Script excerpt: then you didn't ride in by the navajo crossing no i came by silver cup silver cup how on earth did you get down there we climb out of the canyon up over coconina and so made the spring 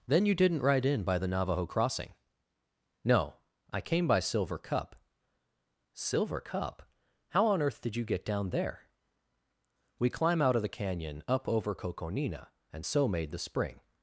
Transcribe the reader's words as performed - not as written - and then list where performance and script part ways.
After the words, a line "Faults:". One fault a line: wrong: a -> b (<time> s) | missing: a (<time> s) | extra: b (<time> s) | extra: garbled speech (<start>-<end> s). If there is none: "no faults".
then you didn't ride in by the navajo crossing no i came by silver cup silver cup how on earth did you get down there we climb out of the canyon up over coconina and so made the spring
Faults:
no faults